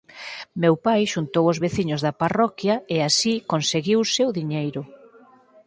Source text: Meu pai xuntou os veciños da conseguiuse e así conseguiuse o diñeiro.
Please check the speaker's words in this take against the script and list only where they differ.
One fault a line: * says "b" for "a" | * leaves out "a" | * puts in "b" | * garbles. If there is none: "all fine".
* says "parroquia" for "conseguiuse"